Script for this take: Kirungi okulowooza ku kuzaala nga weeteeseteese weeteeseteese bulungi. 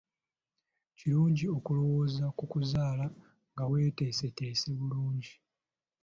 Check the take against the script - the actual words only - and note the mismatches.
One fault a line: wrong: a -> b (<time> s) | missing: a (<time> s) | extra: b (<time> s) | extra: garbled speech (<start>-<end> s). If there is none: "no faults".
missing: weeteeseteese (4.7 s)